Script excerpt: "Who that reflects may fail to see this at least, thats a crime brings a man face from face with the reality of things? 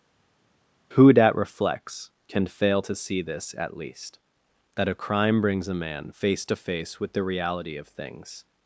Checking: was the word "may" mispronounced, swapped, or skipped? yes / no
yes